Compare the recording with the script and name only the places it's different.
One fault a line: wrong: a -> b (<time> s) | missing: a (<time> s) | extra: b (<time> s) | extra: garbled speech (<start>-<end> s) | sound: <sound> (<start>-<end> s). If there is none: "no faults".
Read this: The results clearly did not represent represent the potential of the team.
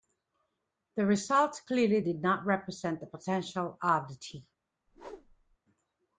missing: represent (3.0 s)
sound: whoosh (4.9-5.6 s)